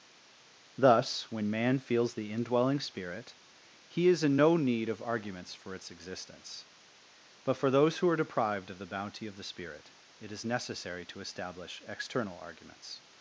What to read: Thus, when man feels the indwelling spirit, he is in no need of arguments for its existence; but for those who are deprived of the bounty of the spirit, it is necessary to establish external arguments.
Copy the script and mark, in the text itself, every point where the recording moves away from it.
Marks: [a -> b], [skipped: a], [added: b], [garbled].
Thus, when man feels the indwelling spirit, he is in no need of arguments for its existence; but for those who are deprived of the bounty of the spirit, it is necessary to establish external arguments.